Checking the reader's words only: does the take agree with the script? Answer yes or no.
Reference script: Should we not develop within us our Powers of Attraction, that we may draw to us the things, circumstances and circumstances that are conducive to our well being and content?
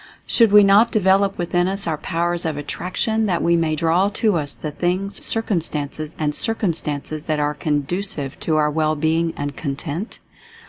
yes